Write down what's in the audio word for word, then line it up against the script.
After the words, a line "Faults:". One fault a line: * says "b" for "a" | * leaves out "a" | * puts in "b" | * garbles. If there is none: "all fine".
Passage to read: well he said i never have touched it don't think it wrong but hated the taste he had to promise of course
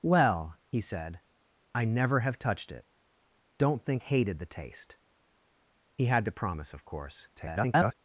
well he said i never have touched it don't think hated the taste he had to promise of course [garbled]
Faults:
* leaves out "it wrong but"
* garbles